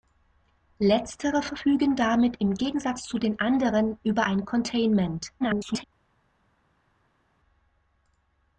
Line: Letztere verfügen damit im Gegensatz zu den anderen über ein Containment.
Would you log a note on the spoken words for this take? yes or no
yes